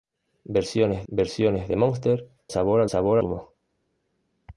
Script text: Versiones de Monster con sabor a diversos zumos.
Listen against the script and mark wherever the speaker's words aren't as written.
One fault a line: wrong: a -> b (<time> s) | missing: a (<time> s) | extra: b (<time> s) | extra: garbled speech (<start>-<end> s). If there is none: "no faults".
extra: versiones (1.1 s)
missing: con (2.3 s)
wrong: diversos -> sabor (2.9 s)